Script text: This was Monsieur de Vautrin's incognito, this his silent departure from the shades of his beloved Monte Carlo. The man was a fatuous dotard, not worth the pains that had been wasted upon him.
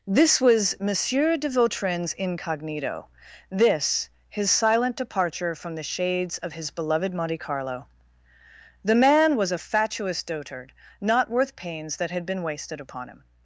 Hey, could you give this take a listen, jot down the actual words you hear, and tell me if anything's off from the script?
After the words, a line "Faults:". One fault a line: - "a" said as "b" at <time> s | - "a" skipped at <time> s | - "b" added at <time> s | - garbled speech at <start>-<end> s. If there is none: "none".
This was Monsieur de Vautrin's incognito, this his silent departure from the shades of his beloved Monte Carlo. The man was a fatuous dotard, not worth pains that had been wasted upon him.
Faults:
- "the" skipped at 11.6 s